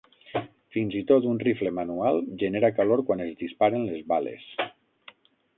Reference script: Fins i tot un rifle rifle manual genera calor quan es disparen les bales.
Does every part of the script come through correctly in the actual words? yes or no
no